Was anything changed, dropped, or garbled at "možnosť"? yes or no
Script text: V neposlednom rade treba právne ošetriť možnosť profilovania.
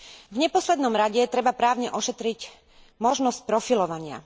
no